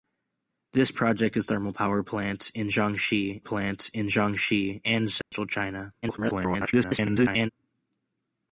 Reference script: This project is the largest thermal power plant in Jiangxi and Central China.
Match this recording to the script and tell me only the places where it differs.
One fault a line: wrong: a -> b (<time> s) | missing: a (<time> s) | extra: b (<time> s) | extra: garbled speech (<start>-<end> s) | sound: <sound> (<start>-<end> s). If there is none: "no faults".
wrong: the largest thermal power -> thermal power plant in Jiangxi (1.5 s)
sound: dropout (5.2-5.3 s)
extra: garbled speech (6.0-7.5 s)